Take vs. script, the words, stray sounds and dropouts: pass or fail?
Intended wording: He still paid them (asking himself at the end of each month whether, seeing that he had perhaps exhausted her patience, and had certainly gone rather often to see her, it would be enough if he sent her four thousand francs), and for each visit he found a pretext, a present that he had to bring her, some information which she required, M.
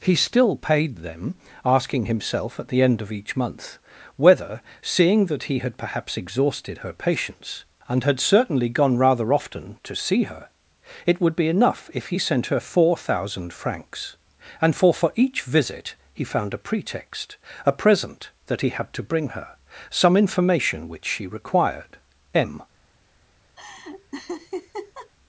fail